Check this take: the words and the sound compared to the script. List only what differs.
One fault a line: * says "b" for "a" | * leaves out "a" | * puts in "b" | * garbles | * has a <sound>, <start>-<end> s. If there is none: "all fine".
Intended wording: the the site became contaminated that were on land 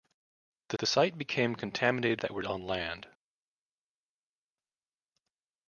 all fine